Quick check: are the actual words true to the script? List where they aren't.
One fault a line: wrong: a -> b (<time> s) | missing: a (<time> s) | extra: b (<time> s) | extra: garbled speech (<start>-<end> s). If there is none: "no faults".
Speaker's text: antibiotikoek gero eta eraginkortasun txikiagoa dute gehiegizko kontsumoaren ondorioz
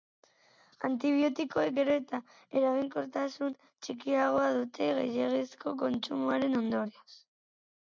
no faults